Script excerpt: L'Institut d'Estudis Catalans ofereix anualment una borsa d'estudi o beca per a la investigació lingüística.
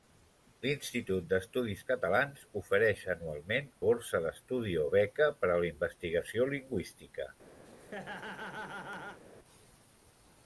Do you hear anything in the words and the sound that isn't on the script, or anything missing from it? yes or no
yes